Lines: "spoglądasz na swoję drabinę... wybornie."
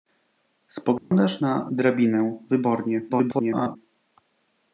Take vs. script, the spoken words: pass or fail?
fail